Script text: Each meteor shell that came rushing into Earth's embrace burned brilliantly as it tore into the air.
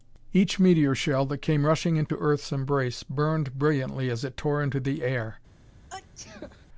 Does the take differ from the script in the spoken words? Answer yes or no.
no